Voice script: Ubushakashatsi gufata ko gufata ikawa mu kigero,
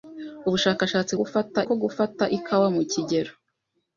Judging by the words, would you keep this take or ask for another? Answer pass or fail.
pass